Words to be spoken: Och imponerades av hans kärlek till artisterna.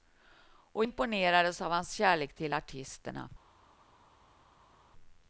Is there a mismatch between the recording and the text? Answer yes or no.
no